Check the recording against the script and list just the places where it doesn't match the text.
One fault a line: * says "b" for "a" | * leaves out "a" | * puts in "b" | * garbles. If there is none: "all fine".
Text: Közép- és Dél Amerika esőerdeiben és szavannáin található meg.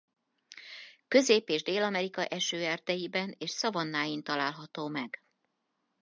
all fine